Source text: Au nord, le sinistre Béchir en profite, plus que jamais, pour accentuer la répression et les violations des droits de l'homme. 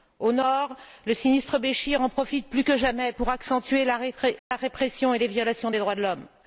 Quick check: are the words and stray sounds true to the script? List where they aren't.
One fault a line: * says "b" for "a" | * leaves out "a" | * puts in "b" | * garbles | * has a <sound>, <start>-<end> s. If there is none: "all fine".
* has a dropout, 4.4-4.5 s